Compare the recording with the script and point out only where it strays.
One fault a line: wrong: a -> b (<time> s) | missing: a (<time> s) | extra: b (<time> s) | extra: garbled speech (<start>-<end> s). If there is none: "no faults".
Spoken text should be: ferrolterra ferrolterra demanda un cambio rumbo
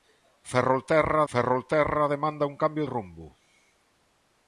no faults